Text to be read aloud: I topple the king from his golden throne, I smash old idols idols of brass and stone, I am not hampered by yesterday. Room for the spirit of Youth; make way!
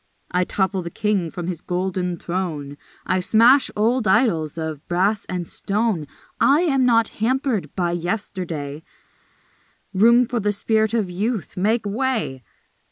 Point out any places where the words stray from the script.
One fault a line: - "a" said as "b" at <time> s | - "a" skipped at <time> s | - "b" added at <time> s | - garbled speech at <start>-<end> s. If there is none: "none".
- "idols" skipped at 4.6 s